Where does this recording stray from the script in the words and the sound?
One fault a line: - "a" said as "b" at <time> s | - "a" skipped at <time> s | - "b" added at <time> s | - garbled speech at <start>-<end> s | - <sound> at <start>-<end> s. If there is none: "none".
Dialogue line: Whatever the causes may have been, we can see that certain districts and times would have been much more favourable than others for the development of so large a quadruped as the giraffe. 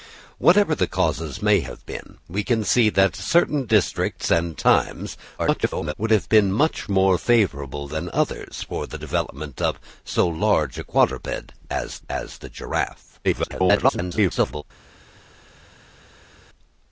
- garbled speech at 5.4-5.9 s
- "as" added at 12.1 s
- garbled speech at 13.2-14.6 s